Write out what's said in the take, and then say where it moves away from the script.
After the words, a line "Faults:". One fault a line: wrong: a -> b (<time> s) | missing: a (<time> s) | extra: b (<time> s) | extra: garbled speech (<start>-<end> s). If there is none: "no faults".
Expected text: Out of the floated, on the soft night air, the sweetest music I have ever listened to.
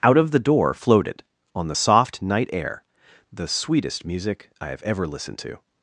Out of the door floated, on the soft night air, the sweetest music I have ever listened to.
Faults:
extra: door (0.4 s)